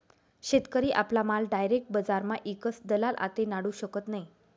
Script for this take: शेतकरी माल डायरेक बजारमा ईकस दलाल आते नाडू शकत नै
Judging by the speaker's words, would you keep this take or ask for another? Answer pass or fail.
fail